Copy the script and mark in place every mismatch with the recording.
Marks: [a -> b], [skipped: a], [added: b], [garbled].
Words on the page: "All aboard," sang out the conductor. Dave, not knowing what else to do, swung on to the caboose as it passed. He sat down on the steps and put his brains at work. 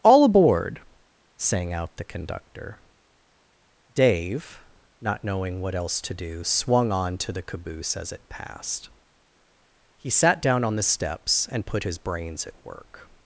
"All aboard," sang out the conductor. Dave, not knowing what else to do, swung on to the caboose as it passed. He sat down on the steps and put his brains at work.